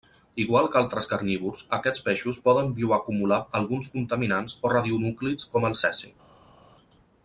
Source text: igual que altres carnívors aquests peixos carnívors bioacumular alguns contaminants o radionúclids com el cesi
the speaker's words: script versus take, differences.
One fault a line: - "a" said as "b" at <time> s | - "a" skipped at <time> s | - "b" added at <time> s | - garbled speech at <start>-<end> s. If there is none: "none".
- "carnívors" said as "poden" at 2.5 s